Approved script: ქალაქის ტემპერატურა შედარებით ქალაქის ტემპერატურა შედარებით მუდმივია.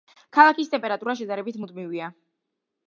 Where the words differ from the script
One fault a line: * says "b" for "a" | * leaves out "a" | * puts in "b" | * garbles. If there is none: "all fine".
* leaves out "ქალაქის ტემპერატურა შედარებით"